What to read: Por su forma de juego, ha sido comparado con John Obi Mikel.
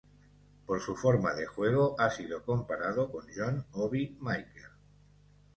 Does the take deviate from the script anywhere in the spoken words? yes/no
no